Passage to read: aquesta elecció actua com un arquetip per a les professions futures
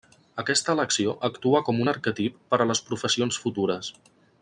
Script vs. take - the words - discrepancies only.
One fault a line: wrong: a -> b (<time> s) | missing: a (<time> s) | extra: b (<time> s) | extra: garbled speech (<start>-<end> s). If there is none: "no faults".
no faults